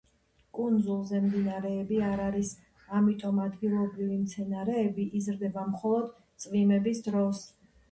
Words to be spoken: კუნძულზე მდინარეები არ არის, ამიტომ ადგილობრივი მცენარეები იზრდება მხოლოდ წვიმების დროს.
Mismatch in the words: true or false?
false